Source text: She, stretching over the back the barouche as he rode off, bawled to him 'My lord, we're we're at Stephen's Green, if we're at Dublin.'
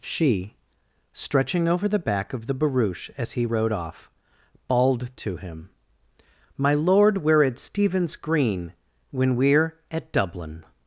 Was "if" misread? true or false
true